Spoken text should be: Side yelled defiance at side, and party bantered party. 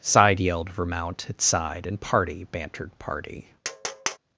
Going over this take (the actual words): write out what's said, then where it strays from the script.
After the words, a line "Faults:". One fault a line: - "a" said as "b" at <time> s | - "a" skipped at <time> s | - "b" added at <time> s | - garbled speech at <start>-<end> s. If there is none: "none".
Side yelled vermount at side, and party bantered party.
Faults:
- "defiance" said as "vermount" at 0.7 s